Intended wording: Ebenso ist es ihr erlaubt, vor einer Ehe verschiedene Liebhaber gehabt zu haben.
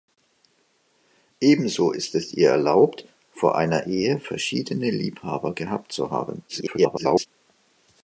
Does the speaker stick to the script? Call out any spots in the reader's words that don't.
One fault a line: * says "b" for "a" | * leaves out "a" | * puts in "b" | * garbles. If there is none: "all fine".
* garbles